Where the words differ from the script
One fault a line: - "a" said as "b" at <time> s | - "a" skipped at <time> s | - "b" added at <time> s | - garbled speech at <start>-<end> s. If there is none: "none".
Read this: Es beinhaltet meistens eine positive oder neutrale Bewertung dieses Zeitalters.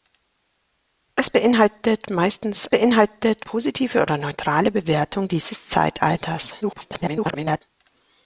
- "eine" said as "beinhaltet" at 2.7 s
- garbled speech at 6.6-7.6 s